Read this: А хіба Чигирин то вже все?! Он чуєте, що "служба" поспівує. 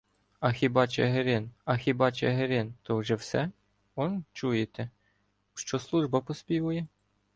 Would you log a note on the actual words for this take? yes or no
yes